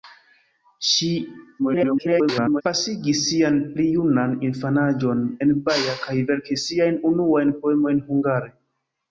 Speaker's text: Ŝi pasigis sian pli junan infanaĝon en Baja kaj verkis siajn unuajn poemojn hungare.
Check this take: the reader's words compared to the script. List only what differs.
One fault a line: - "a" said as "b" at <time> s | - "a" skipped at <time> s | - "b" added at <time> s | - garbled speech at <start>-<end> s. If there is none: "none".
- garbled speech at 1.6-2.6 s